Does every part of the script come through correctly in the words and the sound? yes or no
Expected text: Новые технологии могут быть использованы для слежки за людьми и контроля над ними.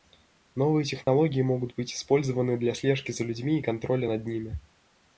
no